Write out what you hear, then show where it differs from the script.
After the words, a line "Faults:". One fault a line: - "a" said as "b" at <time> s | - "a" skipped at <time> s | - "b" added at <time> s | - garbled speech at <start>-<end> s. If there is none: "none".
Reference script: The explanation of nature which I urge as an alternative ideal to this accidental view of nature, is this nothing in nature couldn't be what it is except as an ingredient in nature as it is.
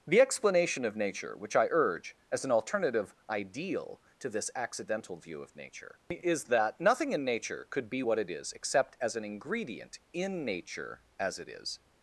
The explanation of nature which I urge as an alternative ideal to this accidental view of nature, is that nothing in nature could be what it is except as an ingredient in nature as it is.
Faults:
- "this" said as "that" at 6.4 s
- "couldn't" said as "could" at 7.7 s